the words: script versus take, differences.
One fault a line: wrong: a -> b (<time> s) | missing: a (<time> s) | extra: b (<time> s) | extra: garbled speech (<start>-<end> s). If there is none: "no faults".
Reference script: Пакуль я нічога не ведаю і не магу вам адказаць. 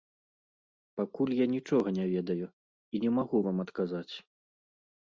no faults